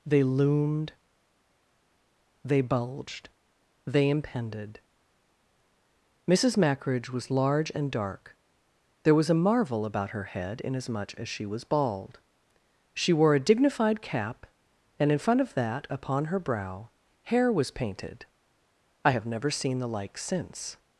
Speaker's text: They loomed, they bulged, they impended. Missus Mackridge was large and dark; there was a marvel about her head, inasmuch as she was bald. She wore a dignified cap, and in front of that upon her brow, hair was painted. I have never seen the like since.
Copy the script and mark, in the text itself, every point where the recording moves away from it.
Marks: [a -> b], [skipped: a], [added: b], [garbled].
They loomed, they bulged, they impended. Missus Mackridge was large and dark; there was a marvel about her head, inasmuch as she was bald. She wore a dignified cap, and in front of that upon her brow, hair was painted. I have never seen the like since.